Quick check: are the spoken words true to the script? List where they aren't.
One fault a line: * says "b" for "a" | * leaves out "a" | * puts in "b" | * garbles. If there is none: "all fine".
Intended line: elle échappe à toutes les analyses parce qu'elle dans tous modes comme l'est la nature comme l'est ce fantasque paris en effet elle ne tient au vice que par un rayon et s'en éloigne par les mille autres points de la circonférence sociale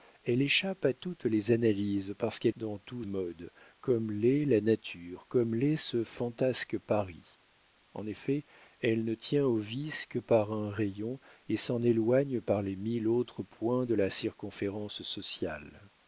all fine